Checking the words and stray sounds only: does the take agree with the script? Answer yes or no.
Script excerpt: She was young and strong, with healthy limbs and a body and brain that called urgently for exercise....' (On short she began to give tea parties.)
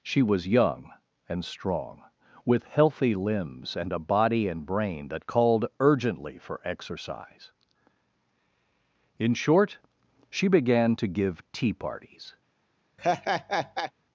no